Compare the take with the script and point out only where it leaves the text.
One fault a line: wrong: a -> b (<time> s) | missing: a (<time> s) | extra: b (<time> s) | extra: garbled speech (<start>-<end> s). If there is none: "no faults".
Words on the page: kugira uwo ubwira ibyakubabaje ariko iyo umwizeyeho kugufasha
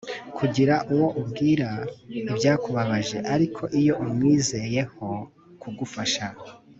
no faults